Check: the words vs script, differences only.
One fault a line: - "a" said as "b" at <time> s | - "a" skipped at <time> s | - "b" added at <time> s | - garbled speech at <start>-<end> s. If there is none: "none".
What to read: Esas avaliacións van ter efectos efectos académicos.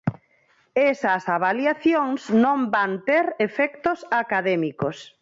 - "non" added at 2.4 s
- "efectos" skipped at 4.0 s